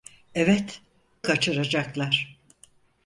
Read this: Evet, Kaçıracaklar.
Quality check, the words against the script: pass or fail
pass